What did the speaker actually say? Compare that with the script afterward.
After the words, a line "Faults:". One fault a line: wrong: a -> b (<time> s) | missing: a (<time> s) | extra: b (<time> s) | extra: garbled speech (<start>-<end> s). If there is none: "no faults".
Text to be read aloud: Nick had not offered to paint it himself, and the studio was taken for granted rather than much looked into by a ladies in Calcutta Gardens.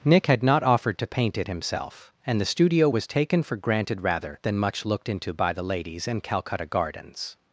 Nick had not offered to paint it himself, and the studio was taken for granted rather than much looked into by the ladies in Calcutta Gardens.
Faults:
wrong: a -> the (5.5 s)